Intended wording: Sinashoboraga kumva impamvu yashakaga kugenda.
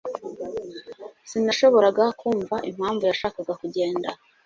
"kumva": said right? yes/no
yes